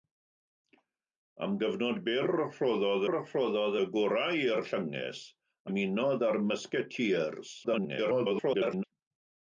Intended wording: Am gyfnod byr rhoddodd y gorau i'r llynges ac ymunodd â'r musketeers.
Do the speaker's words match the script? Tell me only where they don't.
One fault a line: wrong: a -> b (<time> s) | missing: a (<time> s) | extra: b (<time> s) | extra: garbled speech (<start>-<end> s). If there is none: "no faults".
extra: rhoddodd (3.1 s)
missing: ac (5.2 s)
extra: garbled speech (7.6-8.8 s)